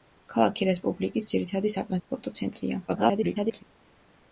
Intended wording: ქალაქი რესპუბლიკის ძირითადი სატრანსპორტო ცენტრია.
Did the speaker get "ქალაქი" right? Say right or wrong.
right